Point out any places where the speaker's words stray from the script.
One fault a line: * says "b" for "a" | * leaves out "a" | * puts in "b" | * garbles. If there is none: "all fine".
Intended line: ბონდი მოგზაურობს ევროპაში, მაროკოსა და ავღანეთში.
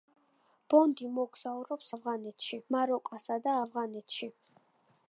* says "ავღანეთში" for "ევროპაში"